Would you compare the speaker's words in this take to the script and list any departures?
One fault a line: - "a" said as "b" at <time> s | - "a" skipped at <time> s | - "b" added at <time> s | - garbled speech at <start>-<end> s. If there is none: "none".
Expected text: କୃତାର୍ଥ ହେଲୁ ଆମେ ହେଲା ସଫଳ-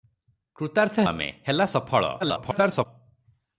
- "ହେଲୁ" skipped at 1.1 s
- garbled speech at 2.2-2.9 s